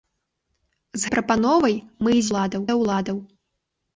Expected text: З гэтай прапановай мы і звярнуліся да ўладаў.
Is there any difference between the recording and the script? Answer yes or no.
yes